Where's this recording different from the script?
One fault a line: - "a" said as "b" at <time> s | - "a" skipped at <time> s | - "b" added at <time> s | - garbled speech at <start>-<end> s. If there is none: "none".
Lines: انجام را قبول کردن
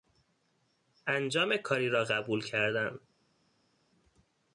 - "کاری" added at 1.6 s